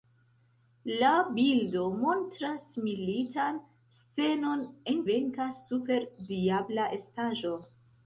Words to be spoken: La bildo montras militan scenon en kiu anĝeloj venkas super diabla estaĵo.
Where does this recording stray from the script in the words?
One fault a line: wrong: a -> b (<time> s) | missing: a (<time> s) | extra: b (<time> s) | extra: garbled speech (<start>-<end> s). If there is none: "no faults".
missing: kiu anĝeloj (5.0 s)